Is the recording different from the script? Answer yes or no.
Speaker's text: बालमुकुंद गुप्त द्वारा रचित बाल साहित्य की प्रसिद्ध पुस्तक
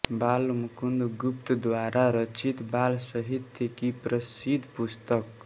no